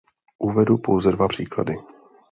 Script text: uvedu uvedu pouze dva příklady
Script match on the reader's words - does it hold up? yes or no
no